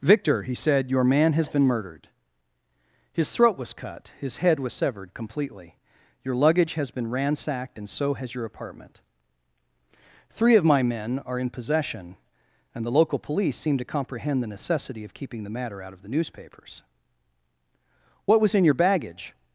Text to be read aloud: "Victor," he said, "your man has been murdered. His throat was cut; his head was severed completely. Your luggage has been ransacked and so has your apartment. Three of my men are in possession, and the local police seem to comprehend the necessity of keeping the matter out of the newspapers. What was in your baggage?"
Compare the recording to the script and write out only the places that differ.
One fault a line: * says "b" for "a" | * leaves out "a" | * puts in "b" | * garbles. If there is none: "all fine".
all fine